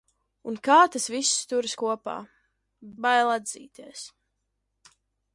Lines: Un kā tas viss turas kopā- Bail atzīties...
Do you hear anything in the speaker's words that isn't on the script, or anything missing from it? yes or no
no